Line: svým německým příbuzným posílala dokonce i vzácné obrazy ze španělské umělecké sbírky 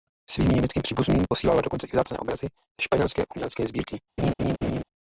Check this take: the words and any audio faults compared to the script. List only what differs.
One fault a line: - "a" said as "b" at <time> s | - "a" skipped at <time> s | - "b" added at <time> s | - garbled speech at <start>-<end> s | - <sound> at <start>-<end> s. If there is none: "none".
- laugh at 4.2-4.8 s